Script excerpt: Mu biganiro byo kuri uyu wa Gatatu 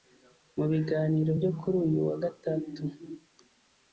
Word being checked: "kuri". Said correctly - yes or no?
yes